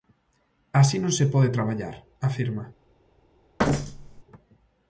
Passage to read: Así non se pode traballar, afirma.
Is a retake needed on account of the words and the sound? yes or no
yes